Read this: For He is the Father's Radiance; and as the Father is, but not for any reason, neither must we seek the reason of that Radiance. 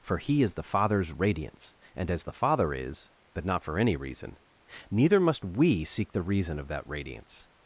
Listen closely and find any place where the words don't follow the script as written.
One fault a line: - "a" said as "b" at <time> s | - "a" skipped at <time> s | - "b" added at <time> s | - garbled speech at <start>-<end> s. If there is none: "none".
none